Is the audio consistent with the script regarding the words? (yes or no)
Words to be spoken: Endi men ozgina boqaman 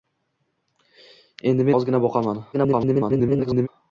no